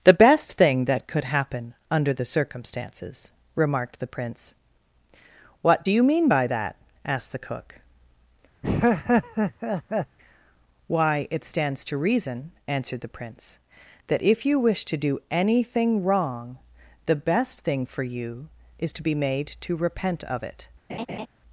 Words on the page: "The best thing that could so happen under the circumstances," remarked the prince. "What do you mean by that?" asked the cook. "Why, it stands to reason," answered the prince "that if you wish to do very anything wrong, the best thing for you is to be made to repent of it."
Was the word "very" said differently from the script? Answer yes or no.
yes